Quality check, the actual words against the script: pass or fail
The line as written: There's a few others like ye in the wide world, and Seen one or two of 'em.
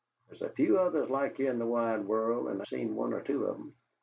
pass